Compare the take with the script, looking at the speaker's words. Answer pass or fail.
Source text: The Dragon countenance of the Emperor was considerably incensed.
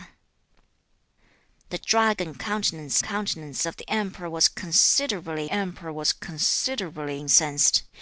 fail